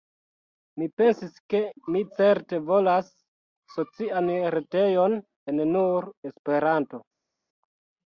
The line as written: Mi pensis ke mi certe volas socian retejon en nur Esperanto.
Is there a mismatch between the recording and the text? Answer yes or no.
no